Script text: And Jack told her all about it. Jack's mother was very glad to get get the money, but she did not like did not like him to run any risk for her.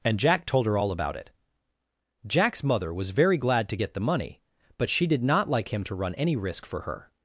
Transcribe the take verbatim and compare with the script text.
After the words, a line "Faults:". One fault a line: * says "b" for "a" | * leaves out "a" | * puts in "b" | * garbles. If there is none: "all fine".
And Jack told her all about it. Jack's mother was very glad to get the money, but she did not like him to run any risk for her.
Faults:
* leaves out "get"
* leaves out "did not like"